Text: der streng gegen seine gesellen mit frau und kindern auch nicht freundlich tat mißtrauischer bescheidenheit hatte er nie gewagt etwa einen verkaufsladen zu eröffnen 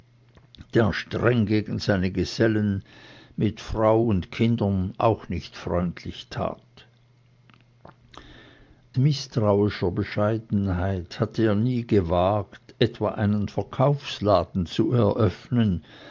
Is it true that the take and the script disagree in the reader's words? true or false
false